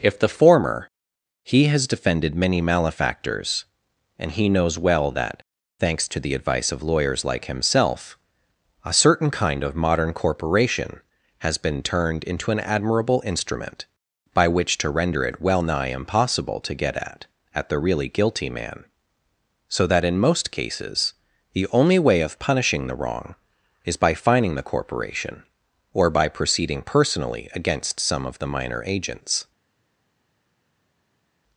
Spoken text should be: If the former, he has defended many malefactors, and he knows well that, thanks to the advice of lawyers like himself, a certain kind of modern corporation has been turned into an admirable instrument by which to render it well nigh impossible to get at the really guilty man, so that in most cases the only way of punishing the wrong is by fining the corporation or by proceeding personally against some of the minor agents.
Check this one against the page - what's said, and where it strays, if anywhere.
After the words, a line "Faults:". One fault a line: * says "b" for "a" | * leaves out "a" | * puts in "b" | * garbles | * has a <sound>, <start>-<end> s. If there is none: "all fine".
If the former, he has defended many malefactors, and he knows well that, thanks to the advice of lawyers like himself, a certain kind of modern corporation has been turned into an admirable instrument by which to render it well nigh impossible to get at at the really guilty man, so that in most cases the only way of punishing the wrong is by fining the corporation or by proceeding personally against some of the minor agents.
Faults:
* puts in "at"